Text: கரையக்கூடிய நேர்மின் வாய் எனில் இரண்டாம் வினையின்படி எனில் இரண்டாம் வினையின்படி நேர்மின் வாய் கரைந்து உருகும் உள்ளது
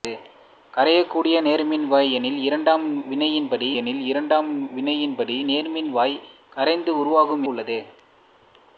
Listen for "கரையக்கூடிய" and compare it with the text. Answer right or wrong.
right